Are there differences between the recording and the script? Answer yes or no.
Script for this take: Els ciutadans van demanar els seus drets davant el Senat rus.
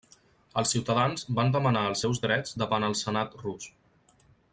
no